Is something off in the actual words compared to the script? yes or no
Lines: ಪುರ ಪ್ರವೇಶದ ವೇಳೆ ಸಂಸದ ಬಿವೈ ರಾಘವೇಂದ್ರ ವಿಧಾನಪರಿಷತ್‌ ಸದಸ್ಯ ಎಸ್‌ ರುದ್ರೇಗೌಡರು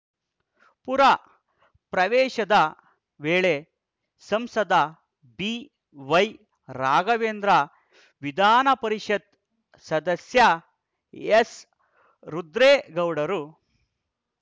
no